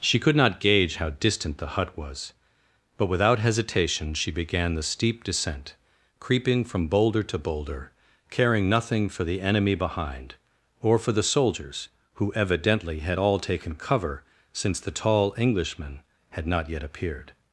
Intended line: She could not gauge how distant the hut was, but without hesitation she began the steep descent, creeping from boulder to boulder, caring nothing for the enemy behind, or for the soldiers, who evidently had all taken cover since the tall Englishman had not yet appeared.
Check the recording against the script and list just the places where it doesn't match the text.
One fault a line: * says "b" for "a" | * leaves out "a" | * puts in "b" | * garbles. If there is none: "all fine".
all fine